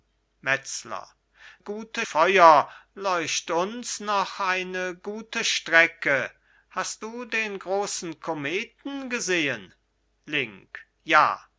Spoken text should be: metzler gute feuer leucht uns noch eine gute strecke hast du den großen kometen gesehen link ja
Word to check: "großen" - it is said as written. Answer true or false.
true